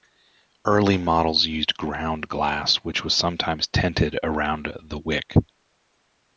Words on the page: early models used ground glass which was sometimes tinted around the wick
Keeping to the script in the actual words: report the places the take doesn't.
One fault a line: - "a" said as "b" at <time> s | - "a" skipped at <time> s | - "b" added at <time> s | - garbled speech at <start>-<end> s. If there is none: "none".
none